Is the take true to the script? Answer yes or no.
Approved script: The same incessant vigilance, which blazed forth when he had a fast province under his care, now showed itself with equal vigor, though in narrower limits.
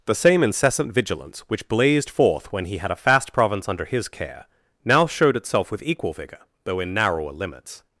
yes